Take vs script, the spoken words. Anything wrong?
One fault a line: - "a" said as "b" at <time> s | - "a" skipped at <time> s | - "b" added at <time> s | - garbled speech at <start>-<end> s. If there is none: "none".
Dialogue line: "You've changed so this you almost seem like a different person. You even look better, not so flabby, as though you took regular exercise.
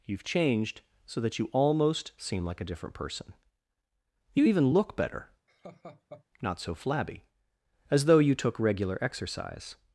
- "this" said as "that" at 1.2 s